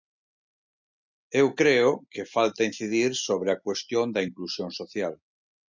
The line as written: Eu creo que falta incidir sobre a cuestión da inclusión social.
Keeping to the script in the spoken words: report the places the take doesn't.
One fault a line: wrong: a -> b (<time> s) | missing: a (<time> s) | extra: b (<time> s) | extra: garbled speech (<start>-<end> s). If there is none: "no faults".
no faults